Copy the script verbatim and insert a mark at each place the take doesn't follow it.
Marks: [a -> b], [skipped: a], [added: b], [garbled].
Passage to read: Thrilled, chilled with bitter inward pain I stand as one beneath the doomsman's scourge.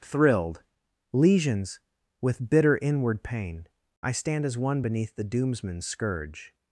Thrilled, [chilled -> lesions] with bitter inward pain I stand as one beneath the doomsman's scourge.